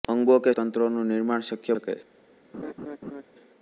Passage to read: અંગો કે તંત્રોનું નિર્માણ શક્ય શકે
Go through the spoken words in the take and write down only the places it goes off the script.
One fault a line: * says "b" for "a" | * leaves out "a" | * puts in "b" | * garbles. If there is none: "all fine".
all fine